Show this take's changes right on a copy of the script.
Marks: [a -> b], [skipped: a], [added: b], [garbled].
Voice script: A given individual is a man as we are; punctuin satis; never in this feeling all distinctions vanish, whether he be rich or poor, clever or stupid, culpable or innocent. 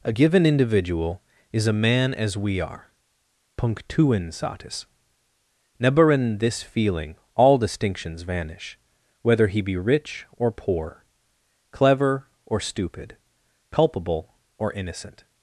A given individual is a man as we are; punctuin satis; never in this feeling all distinctions vanish, whether he be rich or poor, clever or stupid, culpable or innocent.